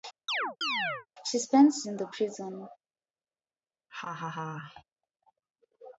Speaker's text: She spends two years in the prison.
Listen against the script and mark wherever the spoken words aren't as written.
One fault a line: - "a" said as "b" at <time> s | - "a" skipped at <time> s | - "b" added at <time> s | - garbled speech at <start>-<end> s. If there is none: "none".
- "two years" skipped at 1.9 s